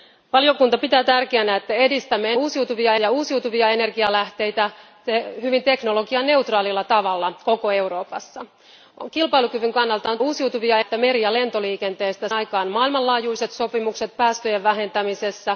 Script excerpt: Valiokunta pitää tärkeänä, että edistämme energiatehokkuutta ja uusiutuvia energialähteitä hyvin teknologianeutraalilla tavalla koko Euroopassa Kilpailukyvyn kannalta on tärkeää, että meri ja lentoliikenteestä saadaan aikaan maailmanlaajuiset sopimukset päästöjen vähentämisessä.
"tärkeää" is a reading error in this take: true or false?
true